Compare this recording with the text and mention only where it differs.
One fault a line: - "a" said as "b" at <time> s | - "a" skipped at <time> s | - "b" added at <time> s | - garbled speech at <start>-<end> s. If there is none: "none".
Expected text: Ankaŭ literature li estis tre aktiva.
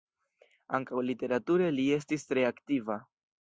none